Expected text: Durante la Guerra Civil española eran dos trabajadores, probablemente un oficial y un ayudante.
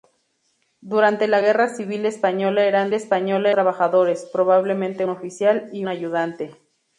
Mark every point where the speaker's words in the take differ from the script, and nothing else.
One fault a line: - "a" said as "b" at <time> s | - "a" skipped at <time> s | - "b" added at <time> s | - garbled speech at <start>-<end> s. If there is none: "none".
- "dos" said as "española" at 2.9 s
- "un" skipped at 5.0 s
- "un" skipped at 5.9 s